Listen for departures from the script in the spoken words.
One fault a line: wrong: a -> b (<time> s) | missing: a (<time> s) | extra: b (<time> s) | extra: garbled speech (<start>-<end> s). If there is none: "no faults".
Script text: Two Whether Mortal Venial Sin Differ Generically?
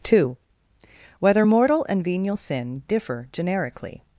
extra: and (1.9 s)